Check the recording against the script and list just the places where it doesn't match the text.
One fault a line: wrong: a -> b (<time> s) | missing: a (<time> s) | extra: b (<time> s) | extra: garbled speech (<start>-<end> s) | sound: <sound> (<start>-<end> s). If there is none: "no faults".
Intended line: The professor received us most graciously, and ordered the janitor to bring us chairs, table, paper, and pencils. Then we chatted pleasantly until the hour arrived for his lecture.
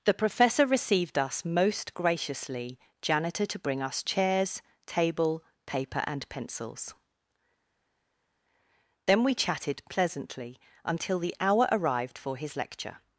missing: and ordered the (2.8 s)